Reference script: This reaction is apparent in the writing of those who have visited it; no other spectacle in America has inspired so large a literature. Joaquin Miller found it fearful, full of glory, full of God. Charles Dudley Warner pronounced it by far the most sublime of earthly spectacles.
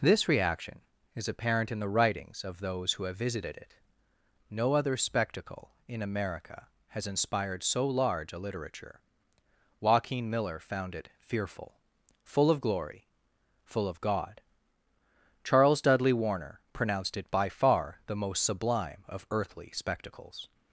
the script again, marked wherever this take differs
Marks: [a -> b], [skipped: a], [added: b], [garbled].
This reaction is apparent in the [writing -> writings] of those who have visited it; no other spectacle in America has inspired so large a literature. Joaquin Miller found it fearful, full of glory, full of God. Charles Dudley Warner pronounced it by far the most sublime of earthly spectacles.